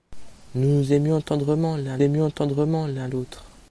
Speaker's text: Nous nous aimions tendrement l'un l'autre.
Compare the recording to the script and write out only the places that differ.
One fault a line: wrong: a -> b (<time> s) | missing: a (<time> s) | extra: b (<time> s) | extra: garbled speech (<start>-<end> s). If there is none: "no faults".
extra: aimions tendrement l'un (2.0 s)